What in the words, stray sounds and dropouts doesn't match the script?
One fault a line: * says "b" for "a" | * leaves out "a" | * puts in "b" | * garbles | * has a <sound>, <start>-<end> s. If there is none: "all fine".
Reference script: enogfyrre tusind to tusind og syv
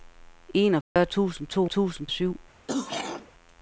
* has a dropout, 0.8-1.0 s
* has a throat clearing, 2.7-3.3 s